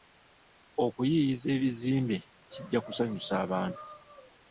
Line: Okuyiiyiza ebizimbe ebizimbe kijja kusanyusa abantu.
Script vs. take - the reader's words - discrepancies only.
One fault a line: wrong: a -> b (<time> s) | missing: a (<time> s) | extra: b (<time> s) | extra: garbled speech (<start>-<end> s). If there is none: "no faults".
missing: ebizimbe (2.2 s)